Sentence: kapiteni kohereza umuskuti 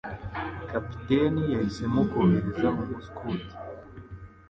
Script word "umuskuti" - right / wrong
right